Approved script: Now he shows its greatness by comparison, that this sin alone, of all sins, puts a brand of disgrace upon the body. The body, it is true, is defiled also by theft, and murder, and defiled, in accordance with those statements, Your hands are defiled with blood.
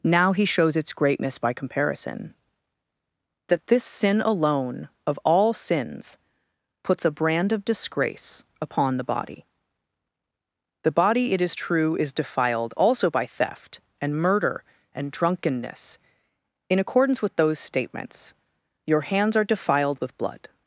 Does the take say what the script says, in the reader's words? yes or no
no